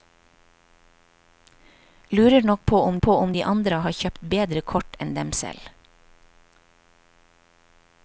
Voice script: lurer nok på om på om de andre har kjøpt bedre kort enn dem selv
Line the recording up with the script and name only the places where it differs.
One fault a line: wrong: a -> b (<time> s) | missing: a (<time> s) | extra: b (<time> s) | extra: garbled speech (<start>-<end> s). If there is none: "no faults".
no faults